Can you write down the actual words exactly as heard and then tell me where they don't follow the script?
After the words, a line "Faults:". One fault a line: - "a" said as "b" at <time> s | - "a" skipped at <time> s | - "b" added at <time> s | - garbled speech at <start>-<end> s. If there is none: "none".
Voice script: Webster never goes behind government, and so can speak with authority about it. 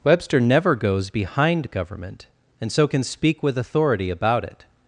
Webster never goes behind government, and so can speak with authority about it.
Faults:
none